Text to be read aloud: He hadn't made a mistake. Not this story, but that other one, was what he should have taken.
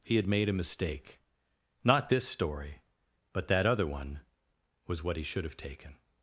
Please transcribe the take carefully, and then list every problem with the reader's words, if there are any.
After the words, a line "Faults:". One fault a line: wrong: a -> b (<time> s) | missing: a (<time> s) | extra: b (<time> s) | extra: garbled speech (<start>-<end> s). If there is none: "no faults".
He had made a mistake. Not this story, but that other one, was what he should have taken.
Faults:
wrong: hadn't -> had (0.1 s)